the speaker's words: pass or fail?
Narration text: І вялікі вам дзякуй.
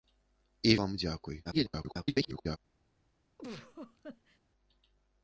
fail